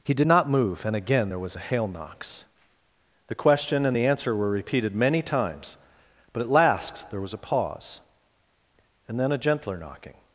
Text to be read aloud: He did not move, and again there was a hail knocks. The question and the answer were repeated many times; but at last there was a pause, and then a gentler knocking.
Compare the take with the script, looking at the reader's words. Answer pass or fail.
pass